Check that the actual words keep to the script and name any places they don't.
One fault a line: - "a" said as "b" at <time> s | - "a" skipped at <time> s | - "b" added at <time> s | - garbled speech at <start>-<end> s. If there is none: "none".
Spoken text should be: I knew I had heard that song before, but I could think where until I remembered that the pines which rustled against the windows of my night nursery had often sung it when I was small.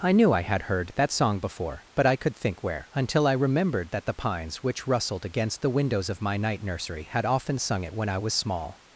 none